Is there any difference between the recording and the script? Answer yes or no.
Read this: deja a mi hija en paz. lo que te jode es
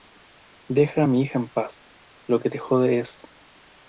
no